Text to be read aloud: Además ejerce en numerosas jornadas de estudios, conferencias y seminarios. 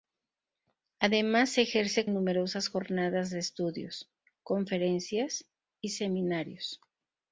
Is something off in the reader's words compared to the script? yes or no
no